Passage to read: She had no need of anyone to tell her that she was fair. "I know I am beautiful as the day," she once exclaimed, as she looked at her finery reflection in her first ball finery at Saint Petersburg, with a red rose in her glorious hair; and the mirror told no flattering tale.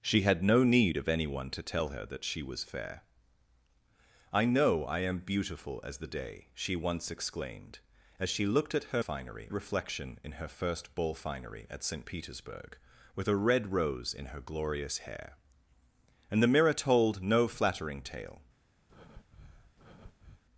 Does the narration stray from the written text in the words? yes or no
no